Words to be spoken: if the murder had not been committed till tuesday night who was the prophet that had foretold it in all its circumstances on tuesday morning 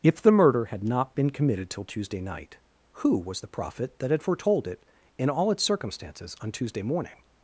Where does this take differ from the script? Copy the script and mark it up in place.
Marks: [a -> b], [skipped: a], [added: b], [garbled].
if the murder had not been committed till tuesday night who was the prophet that had foretold it in all its circumstances on tuesday morning